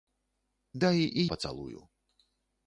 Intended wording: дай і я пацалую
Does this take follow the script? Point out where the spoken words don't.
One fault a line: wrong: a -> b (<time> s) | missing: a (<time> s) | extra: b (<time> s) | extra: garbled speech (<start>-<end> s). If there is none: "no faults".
missing: я (1.3 s)